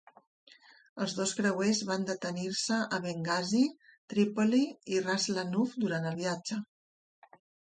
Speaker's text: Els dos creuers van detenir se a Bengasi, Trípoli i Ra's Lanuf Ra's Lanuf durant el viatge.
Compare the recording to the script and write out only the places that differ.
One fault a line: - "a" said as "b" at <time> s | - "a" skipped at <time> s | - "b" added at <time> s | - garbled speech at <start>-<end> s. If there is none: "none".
- "Ra's Lanuf" skipped at 5.8 s